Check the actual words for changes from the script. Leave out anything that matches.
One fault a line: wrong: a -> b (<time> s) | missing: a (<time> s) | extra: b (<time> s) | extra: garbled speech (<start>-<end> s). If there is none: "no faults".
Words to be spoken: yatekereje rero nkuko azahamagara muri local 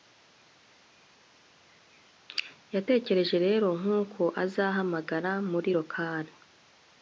no faults